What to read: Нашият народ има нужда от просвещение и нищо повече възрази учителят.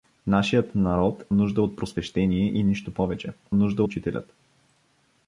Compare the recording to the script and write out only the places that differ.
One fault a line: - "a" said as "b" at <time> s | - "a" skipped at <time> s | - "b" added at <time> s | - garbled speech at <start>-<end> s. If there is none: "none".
- "има" skipped at 1.2 s
- "възрази" said as "нужда" at 3.5 s